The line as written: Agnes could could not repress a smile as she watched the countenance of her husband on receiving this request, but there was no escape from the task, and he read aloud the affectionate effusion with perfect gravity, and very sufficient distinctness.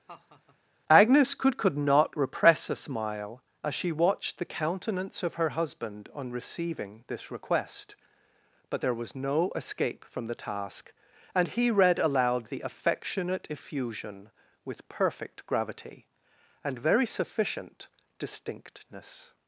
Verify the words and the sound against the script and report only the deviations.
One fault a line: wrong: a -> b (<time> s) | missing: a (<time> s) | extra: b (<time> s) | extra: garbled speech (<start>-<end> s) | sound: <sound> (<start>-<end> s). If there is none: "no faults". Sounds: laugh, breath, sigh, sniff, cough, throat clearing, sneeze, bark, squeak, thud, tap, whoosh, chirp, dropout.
sound: laugh (0.1-0.6 s)